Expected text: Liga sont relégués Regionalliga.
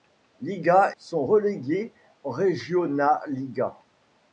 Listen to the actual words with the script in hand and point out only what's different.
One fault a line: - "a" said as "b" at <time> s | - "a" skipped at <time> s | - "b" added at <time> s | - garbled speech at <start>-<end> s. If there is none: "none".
none